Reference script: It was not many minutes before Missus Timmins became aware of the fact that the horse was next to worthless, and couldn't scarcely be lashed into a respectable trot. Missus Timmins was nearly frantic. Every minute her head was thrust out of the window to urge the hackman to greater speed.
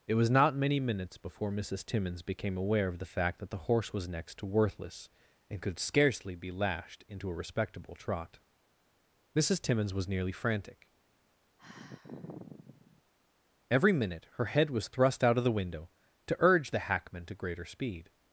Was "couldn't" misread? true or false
true